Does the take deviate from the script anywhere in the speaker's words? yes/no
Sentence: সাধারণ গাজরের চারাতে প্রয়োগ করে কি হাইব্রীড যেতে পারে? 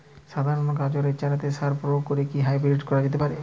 yes